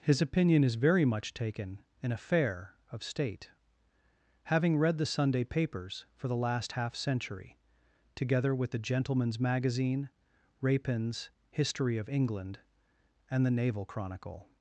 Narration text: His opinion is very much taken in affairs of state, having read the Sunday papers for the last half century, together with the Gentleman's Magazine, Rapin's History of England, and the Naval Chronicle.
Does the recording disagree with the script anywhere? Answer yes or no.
yes